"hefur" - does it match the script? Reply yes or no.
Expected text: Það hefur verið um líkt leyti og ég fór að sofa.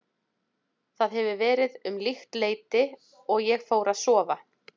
yes